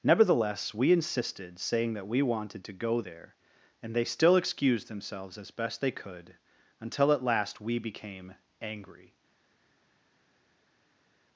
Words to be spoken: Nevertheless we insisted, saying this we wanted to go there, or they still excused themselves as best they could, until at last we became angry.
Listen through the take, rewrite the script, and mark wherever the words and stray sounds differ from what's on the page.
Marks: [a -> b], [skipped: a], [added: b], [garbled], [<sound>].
Nevertheless we insisted, saying [this -> that] we wanted to go there, [or -> and] they still excused themselves as best they could, until at last we became angry.